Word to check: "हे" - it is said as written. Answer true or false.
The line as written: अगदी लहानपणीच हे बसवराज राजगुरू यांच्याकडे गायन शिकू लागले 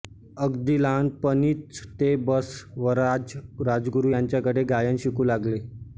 false